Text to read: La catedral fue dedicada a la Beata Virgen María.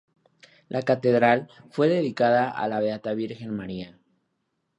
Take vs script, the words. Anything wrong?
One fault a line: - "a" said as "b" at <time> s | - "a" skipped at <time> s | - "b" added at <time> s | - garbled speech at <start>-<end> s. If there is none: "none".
none